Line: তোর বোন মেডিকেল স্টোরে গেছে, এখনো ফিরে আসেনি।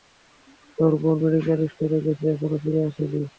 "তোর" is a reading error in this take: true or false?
false